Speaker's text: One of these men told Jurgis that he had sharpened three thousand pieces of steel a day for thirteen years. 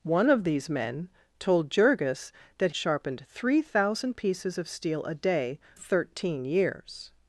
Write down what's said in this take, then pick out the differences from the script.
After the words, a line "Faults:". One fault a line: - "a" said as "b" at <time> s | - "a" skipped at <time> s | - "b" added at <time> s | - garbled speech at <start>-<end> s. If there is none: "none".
One of these men told Jurgis that sharpened three thousand pieces of steel a day thirteen years.
Faults:
- "he had" skipped at 2.7 s
- "for" skipped at 5.6 s